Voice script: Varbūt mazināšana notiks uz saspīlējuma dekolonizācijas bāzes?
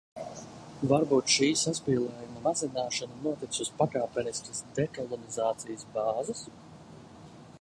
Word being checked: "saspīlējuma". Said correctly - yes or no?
no